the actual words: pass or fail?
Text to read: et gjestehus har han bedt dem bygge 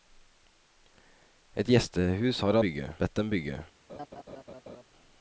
fail